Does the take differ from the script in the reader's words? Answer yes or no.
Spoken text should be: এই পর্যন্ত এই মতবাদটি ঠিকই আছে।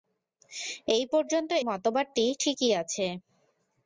yes